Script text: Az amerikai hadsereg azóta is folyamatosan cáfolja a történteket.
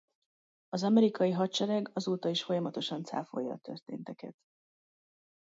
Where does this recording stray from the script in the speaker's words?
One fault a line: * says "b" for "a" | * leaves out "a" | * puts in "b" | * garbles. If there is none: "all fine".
all fine